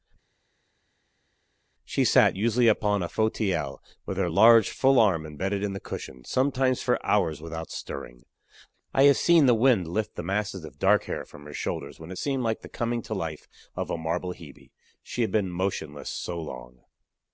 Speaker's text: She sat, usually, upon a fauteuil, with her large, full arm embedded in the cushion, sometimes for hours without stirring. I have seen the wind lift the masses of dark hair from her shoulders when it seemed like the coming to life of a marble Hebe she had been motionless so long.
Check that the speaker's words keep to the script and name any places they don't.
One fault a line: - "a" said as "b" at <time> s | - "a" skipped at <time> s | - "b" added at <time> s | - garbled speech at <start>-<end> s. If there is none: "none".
none